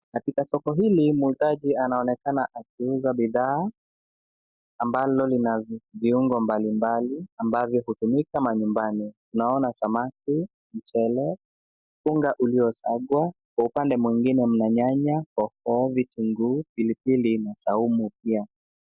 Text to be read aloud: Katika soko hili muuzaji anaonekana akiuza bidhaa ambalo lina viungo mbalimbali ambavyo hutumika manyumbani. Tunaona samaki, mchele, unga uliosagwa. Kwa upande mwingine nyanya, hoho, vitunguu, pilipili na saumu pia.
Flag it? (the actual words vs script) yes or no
yes